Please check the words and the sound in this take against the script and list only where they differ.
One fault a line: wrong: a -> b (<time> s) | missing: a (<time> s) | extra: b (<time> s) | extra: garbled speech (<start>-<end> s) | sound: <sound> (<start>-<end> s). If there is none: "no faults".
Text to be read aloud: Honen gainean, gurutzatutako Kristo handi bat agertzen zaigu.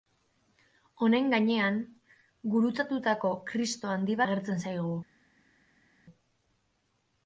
missing: bat (4.2 s)